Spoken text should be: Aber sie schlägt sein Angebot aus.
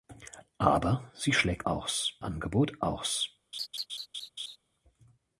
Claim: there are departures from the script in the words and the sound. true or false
true